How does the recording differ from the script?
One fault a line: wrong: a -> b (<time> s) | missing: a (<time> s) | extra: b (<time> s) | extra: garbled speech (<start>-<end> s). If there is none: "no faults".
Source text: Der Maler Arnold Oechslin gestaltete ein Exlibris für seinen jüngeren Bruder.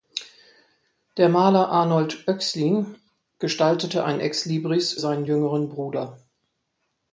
missing: für (4.9 s)